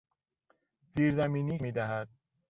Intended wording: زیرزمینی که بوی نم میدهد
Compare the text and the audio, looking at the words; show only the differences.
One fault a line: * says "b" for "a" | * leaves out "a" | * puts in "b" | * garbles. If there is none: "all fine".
* leaves out "که بوی نم"